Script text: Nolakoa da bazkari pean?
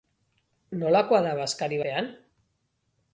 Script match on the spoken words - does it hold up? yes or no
yes